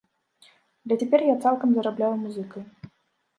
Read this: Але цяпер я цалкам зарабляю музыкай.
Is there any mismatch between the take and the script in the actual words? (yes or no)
no